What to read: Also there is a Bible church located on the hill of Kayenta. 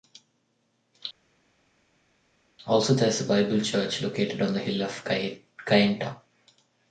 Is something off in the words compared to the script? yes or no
no